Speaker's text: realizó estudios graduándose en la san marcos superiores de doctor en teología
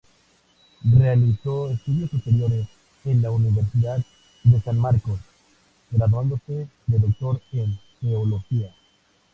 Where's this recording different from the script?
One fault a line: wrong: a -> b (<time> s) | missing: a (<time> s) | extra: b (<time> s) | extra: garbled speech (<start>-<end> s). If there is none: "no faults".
wrong: graduándose -> superiores (2.1 s)
extra: universidad de (3.3 s)
wrong: superiores -> graduándose (5.9 s)